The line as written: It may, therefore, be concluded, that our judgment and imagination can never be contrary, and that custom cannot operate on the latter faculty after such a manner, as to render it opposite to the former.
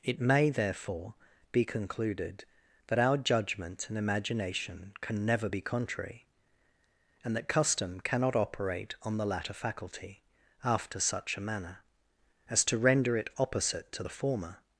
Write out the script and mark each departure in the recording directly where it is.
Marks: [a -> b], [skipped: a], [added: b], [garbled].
It may, therefore, be concluded, that our judgment and imagination can never be contrary, and that custom cannot operate on the latter faculty after such a manner, as to render it opposite to the former.